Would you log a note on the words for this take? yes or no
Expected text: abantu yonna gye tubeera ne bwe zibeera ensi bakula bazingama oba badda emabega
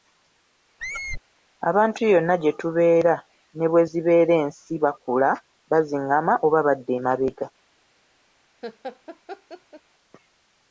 no